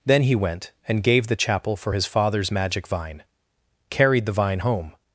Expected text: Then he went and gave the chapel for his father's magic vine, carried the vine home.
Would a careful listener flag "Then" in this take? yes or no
no